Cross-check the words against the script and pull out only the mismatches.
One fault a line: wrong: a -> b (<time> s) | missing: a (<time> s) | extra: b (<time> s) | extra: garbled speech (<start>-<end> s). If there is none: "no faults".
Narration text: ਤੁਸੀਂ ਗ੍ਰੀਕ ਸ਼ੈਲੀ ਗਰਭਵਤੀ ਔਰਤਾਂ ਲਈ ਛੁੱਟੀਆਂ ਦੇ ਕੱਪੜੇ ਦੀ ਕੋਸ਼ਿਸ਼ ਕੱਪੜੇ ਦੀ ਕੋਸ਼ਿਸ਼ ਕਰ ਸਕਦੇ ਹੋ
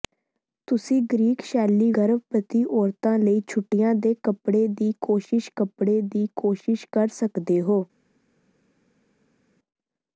no faults